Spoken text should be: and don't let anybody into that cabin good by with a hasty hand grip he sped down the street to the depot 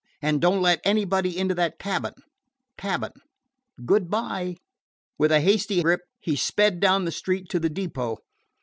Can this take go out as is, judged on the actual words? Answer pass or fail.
fail